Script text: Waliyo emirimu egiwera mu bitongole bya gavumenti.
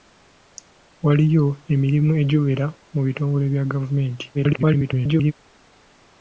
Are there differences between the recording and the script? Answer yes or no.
yes